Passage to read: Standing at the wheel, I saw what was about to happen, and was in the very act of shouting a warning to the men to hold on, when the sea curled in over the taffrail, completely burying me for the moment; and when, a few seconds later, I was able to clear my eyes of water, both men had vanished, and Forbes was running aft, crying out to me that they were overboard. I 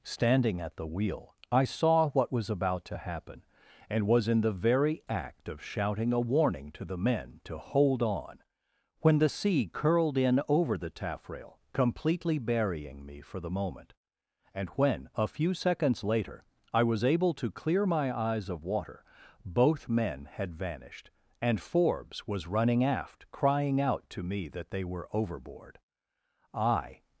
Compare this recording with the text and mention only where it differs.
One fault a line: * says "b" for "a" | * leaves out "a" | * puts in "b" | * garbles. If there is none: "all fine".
all fine